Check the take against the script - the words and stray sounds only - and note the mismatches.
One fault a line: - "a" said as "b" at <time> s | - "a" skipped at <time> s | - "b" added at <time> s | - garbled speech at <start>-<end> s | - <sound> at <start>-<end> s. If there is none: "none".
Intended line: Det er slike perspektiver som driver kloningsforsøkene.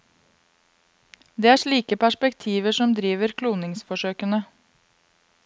none